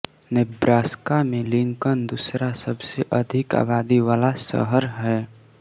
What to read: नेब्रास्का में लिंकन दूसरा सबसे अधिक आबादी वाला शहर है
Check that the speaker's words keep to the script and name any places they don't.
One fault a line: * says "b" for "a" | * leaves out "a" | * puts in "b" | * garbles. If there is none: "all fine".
all fine